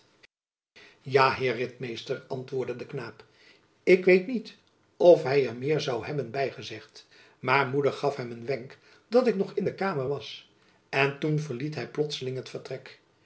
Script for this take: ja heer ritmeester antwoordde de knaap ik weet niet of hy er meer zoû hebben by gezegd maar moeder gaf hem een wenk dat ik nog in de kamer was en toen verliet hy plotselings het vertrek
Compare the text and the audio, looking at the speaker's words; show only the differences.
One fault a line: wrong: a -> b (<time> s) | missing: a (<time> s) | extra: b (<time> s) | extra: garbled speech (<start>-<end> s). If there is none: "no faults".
no faults